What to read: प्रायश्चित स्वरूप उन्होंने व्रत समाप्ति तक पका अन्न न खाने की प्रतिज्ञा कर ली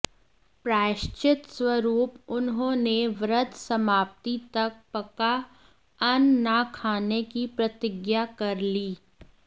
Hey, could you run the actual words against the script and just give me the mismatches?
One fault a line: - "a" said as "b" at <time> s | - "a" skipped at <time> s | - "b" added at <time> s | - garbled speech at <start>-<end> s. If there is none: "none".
none